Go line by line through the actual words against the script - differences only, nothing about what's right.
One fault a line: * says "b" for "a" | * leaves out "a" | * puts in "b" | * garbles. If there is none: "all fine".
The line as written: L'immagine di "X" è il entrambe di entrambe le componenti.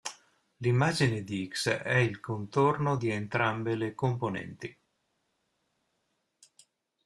* says "contorno" for "entrambe"